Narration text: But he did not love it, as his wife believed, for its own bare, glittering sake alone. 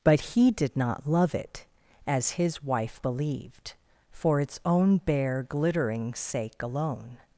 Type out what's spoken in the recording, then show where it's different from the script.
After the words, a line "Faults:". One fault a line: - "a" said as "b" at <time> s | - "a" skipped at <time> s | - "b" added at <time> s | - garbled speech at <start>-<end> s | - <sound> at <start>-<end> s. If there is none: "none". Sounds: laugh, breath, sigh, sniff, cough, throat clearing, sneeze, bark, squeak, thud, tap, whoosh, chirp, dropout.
But he did not love it, as his wife believed, for its own bare, glittering sake alone.
Faults:
none